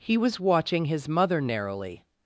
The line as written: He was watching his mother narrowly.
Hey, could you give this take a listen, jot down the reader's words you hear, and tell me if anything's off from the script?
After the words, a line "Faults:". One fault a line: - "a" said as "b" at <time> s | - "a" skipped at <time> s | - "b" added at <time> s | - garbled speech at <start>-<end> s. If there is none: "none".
He was watching his mother narrowly.
Faults:
none